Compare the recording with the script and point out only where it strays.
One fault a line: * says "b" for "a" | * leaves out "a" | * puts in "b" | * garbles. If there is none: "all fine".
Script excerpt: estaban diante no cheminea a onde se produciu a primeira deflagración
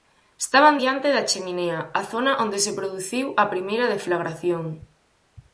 * says "da" for "no"
* puts in "zona"